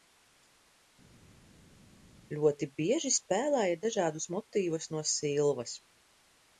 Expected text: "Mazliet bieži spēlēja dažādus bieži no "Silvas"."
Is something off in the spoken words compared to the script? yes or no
yes